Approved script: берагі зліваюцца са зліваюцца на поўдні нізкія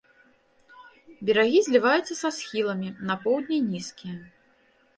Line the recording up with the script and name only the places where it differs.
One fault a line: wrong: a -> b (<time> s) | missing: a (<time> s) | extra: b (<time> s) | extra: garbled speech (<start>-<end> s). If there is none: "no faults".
wrong: зліваюцца -> схіламі (2.4 s)